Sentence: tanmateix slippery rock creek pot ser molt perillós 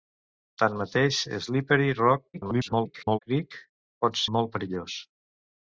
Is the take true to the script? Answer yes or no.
no